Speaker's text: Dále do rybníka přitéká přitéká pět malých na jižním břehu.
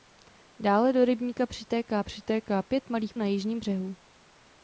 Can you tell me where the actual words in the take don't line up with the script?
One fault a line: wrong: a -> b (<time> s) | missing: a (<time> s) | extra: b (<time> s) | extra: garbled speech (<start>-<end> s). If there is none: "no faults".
no faults